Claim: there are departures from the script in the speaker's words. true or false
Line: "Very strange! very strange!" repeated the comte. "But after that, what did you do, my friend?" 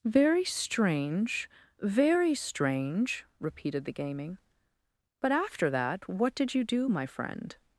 true